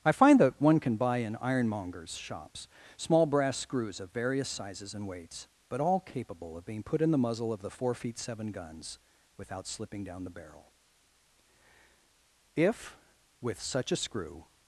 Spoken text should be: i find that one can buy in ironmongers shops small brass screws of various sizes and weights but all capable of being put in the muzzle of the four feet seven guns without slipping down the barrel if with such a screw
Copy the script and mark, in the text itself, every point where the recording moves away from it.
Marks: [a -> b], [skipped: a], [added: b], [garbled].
i find that one can buy in ironmongers shops small brass screws of various sizes and weights but all capable of being put in the muzzle of the four feet seven guns without slipping down the barrel if with such a screw